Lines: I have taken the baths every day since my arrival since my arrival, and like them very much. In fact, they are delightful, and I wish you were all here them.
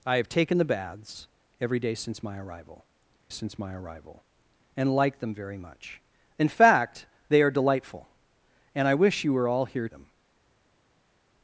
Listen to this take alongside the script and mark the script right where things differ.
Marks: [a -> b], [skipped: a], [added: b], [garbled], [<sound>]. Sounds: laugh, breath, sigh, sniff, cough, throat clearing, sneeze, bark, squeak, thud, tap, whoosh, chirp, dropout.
I have taken the baths every day since my arrival since my arrival, and like them very much. In fact, they are delightful, and I wish you were all here them.